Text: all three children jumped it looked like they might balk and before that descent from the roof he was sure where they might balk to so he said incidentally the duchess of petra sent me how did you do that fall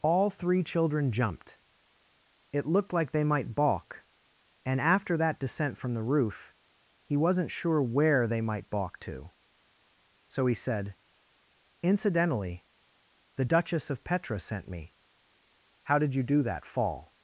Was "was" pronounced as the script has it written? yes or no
no